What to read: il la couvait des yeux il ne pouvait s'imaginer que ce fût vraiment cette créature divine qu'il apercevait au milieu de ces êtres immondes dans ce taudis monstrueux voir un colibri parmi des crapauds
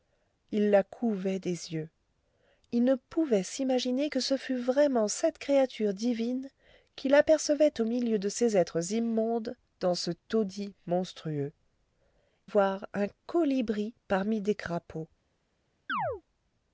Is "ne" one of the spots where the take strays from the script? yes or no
no